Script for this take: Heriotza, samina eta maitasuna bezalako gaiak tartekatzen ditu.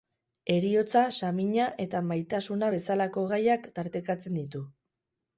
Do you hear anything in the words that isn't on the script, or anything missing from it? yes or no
no